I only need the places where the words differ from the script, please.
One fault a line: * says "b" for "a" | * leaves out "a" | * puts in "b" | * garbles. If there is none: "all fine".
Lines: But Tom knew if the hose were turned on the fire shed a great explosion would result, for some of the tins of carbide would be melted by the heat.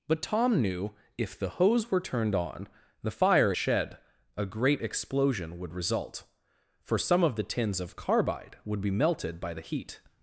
all fine